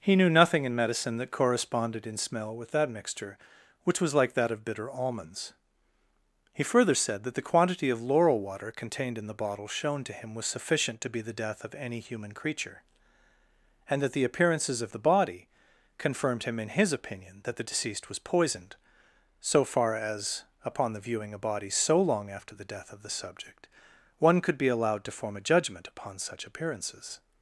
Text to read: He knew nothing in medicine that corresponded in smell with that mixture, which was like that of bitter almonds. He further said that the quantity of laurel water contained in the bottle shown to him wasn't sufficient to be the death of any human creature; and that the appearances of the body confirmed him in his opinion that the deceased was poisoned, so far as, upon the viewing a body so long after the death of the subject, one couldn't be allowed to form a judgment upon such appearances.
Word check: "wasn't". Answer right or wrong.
wrong